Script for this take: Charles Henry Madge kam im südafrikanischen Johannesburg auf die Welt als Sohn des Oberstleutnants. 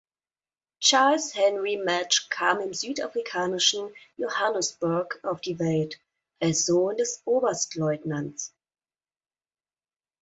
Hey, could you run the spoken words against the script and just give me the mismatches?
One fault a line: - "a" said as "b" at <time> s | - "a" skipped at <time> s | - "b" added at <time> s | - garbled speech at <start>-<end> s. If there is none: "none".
none